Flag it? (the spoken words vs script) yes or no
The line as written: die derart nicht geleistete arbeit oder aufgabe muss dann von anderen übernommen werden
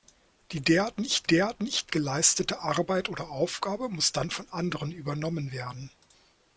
yes